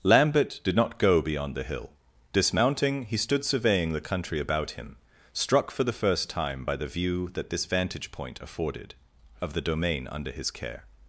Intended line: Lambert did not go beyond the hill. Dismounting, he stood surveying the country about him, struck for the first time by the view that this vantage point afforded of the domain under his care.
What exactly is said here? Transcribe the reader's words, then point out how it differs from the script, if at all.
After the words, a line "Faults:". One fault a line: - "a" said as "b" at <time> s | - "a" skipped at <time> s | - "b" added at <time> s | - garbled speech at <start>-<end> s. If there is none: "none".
Lambert did not go beyond the hill. Dismounting, he stood surveying the country about him, struck for the first time by the view that this vantage point afforded of the domain under his care.
Faults:
none